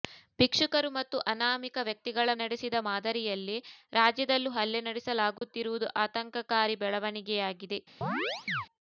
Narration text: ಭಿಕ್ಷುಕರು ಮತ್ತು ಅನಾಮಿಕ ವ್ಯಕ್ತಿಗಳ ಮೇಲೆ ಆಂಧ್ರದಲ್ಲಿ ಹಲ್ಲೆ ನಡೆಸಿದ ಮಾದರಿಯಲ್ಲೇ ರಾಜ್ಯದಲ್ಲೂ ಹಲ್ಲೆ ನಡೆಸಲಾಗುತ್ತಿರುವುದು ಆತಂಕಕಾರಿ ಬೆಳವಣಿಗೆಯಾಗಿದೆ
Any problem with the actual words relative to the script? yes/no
yes